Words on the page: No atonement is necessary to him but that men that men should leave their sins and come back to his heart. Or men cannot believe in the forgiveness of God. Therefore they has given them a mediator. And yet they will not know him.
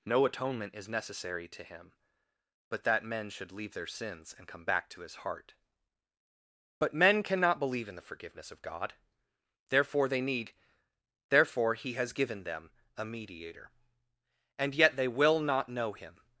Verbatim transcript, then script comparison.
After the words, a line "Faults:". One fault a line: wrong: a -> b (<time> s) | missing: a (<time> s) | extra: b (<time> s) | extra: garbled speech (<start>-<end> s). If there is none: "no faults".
No atonement is necessary to him but that men should leave their sins and come back to his heart. But men cannot believe in the forgiveness of God. Therefore they need, therefore he has given them a mediator. And yet they will not know him.
Faults:
missing: that men (3.3 s)
wrong: Or -> But (6.8 s)
extra: need therefore he (10.2 s)